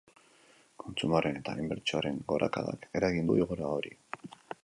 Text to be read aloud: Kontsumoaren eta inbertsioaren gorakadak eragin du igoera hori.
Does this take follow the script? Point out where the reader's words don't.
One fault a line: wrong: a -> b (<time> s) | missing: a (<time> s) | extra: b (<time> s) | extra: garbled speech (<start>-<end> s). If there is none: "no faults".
no faults